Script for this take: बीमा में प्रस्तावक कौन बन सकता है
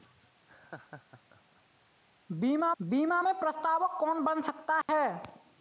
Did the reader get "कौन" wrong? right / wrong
right